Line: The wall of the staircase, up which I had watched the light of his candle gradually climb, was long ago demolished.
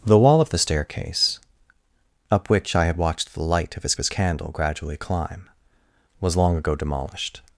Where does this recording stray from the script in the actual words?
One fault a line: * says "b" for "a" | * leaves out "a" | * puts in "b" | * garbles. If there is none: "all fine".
* puts in "his"